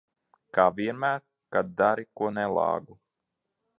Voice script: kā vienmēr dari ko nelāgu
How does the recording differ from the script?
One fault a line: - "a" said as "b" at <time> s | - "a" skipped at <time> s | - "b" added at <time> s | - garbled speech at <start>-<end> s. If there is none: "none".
- "kad" added at 1.5 s